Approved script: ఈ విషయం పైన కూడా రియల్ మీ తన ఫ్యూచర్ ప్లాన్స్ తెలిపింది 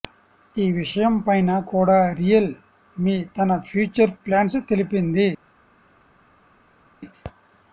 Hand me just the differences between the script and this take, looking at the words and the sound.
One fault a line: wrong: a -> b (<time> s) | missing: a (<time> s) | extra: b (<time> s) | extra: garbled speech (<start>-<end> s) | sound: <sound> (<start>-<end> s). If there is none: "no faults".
no faults